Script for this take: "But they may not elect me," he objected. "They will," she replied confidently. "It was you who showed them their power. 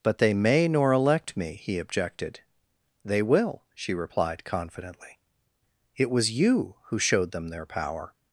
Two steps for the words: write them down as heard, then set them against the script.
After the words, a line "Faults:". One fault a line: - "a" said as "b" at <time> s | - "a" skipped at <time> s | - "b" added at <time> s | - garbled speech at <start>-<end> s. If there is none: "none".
"But they may nor elect me," he objected. "They will," she replied confidently. "It was you who showed them their power.
Faults:
- "not" said as "nor" at 0.7 s